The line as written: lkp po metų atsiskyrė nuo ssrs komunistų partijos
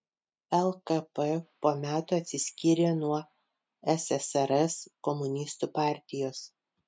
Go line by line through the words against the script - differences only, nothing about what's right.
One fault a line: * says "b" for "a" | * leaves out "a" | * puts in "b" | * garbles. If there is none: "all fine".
all fine